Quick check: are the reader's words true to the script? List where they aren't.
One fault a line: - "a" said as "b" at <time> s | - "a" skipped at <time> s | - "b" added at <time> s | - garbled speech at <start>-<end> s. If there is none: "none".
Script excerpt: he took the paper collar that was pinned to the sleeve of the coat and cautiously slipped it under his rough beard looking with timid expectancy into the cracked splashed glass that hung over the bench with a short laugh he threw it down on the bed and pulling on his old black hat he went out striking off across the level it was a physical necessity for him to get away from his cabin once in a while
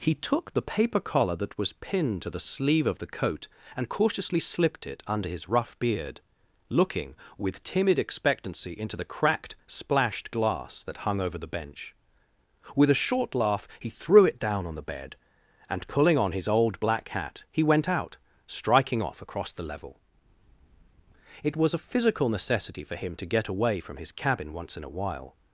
none